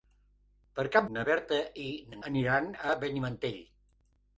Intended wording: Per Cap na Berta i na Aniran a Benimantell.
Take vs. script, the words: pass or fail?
pass